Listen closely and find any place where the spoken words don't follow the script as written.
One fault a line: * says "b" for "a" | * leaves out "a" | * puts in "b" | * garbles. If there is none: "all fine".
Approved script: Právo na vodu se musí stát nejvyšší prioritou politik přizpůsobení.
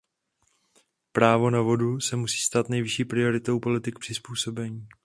all fine